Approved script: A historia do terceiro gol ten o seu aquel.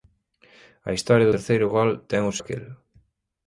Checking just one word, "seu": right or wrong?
wrong